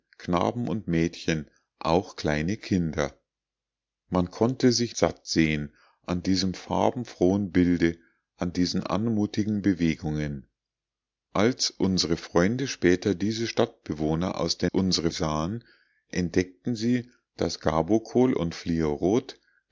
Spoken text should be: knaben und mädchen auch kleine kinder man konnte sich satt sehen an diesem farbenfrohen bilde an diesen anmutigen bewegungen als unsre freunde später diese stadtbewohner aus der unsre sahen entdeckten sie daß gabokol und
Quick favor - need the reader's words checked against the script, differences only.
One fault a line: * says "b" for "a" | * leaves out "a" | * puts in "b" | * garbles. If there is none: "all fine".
all fine